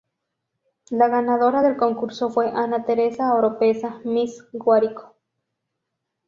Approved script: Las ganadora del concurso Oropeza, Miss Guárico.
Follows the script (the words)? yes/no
no